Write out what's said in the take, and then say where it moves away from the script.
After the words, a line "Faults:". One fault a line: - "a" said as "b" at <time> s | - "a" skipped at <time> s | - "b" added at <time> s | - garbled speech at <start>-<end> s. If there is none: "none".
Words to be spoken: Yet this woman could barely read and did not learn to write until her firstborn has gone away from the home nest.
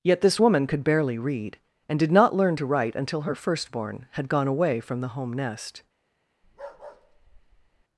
Yet this woman could barely read and did not learn to write until her firstborn had gone away from the home nest.
Faults:
- "has" said as "had" at 4.1 s